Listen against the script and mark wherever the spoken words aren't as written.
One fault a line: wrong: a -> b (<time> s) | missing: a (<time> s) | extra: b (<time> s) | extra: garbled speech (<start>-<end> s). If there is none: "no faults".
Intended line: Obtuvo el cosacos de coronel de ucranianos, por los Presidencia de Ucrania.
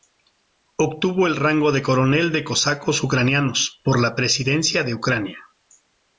wrong: cosacos -> rango (1.4 s)
extra: cosacos (2.4 s)
wrong: los -> la (4.0 s)